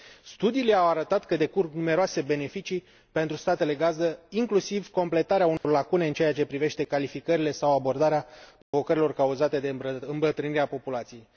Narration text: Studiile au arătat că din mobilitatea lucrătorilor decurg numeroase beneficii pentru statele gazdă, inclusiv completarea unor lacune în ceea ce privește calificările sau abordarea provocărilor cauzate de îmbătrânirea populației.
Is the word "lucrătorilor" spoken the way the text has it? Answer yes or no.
no